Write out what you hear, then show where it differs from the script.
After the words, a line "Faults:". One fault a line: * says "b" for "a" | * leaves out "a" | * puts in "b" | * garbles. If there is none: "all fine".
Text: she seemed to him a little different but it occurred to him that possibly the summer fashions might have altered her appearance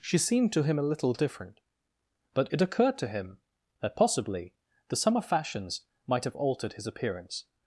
she seemed to him a little different but it occurred to him that possibly the summer fashions might have altered his appearance
Faults:
* says "his" for "her"